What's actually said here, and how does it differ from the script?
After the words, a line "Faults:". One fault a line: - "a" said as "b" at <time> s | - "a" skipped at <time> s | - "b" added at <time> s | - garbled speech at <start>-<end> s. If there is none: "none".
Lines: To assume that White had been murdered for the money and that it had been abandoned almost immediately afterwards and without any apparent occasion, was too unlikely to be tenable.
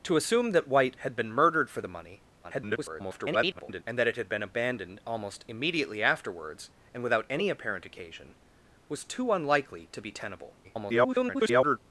To assume that White had been murdered for the money [garbled] and that it had been abandoned almost immediately afterwards and without any apparent occasion, was too unlikely to be tenable. [garbled]
Faults:
- garbled speech at 2.4-3.8 s
- garbled speech at 10.6-11.8 s